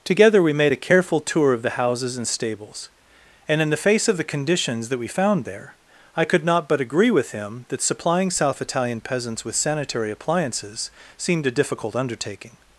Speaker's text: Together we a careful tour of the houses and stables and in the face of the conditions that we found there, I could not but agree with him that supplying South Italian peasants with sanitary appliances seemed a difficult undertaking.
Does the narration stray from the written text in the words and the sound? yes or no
yes